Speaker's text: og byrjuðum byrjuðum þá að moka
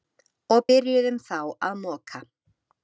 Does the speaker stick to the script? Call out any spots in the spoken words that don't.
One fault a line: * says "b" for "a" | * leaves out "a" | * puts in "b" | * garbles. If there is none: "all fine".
* leaves out "byrjuðum"